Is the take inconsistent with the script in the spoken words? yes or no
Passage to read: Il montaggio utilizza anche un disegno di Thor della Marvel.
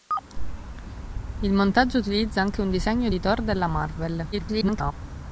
yes